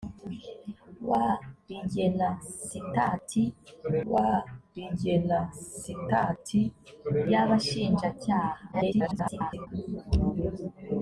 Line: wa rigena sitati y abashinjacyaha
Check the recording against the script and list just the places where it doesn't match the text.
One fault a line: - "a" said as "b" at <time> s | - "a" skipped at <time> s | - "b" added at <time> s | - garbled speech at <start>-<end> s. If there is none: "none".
- "wa rigena sitati" added at 4.1 s
- garbled speech at 8.7-9.7 s